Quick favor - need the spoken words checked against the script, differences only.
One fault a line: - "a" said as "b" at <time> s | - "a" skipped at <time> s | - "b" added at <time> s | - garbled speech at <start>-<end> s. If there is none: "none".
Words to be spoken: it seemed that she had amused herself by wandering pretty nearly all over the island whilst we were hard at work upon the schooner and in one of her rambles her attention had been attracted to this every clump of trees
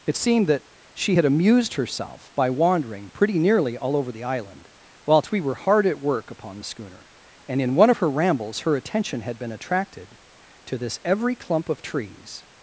none